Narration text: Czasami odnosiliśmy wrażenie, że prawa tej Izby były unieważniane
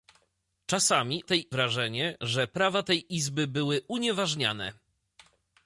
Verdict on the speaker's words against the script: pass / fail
fail